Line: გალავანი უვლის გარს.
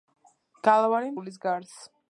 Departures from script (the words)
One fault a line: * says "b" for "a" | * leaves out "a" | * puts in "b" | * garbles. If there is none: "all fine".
all fine